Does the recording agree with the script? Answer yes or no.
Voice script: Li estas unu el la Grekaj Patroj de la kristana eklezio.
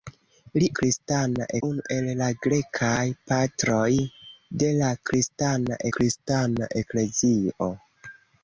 no